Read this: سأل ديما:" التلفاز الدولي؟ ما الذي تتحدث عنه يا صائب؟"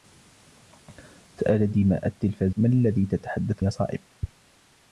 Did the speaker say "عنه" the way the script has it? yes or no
no